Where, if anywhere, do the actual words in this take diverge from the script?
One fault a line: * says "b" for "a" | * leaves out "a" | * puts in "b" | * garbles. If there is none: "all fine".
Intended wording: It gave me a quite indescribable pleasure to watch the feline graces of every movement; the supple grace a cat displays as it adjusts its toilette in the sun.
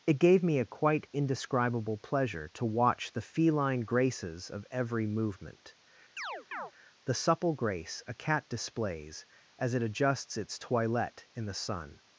all fine